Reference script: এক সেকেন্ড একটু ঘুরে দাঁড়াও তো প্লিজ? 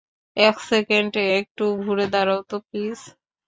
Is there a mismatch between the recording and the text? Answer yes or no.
no